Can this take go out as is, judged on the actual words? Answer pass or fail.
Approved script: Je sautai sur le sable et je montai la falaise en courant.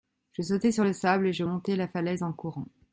pass